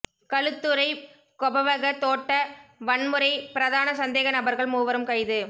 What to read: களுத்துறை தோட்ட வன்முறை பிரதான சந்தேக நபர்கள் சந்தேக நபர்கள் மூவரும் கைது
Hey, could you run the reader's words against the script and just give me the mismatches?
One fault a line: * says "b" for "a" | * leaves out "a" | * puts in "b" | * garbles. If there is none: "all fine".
* puts in "கொபவக"
* leaves out "சந்தேக நபர்கள்"